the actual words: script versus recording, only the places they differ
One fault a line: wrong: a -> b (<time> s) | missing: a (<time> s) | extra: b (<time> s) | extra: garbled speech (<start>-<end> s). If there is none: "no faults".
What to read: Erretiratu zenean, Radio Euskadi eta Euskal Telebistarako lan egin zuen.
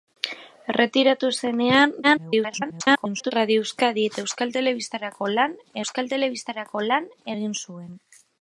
extra: garbled speech (2.0-3.3 s)
extra: Euskal Telebistarako lan (5.8 s)